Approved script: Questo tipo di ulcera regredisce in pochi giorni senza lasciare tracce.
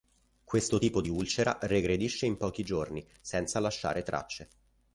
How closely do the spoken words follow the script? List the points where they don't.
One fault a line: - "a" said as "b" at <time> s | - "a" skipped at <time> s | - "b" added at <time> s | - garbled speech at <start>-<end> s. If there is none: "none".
none